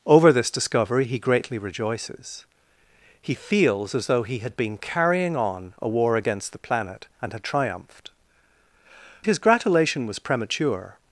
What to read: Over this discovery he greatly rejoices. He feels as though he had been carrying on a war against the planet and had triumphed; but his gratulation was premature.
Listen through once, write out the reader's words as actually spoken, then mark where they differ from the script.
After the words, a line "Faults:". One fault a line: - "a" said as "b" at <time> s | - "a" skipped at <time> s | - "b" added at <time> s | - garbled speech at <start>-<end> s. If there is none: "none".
Over this discovery he greatly rejoices. He feels as though he had been carrying on a war against the planet and had triumphed; his gratulation was premature.
Faults:
- "but" skipped at 8.1 s